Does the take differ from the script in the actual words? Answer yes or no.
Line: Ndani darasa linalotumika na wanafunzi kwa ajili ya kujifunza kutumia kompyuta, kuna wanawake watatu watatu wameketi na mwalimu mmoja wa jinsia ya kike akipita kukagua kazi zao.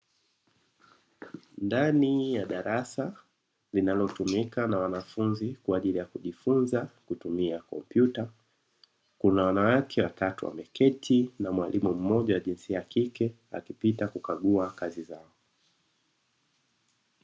yes